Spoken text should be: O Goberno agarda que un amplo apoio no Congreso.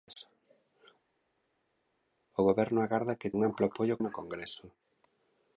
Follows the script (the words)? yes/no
yes